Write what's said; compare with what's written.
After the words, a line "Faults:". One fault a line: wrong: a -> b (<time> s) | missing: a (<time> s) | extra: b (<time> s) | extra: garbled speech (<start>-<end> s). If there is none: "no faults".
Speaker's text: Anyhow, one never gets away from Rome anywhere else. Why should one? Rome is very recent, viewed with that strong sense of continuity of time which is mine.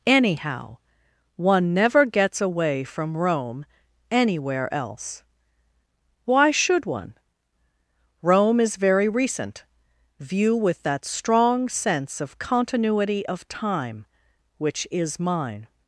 Anyhow, one never gets away from Rome anywhere else. Why should one? Rome is very recent, view with that strong sense of continuity of time which is mine.
Faults:
wrong: viewed -> view (10.2 s)